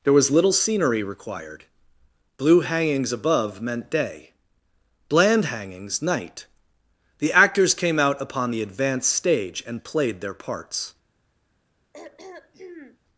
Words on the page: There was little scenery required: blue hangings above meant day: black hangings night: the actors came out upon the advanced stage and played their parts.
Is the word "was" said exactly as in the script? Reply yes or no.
yes